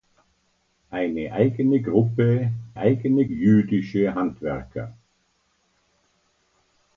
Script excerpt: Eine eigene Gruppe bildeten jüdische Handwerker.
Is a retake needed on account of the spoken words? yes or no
yes